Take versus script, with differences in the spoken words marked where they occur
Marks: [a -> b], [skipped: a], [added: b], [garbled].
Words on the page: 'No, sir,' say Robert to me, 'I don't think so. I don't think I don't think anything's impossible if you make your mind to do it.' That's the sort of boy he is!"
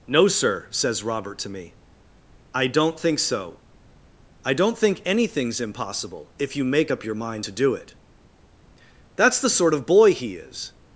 'No, sir,' [say -> says] Robert to me, 'I don't think so. I don't think [skipped: I don't think] anything's impossible if you make [added: up] your mind to do it.' That's the sort of boy he is!"